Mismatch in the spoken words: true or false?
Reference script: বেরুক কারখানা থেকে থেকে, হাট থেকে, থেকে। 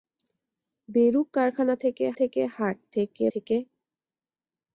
false